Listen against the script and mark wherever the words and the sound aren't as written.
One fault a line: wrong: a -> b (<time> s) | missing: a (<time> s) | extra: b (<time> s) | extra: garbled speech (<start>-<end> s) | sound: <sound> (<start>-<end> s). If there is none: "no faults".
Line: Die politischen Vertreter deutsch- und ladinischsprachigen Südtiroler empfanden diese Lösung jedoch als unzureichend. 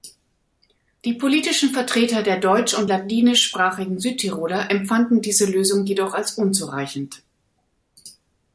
extra: der (2.2 s)